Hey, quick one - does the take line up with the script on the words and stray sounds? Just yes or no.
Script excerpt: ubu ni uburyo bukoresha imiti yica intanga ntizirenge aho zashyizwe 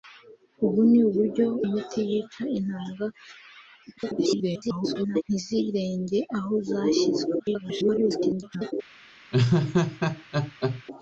no